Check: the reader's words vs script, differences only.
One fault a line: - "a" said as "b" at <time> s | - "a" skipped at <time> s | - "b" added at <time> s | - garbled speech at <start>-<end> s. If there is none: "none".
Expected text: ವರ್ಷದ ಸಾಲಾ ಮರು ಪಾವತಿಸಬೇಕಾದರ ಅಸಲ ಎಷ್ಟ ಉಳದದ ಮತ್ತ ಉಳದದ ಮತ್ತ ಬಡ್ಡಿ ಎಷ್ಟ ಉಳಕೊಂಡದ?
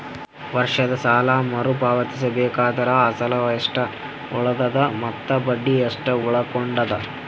- "ಉಳದದ ಮತ್ತ" skipped at 5.3 s